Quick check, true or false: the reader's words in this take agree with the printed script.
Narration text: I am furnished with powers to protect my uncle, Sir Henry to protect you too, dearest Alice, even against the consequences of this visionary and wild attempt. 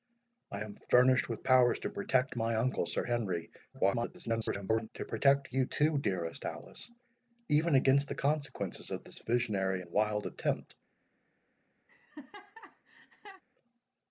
false